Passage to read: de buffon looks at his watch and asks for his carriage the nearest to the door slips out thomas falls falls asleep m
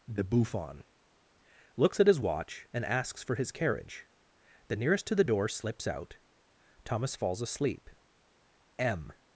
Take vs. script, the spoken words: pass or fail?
fail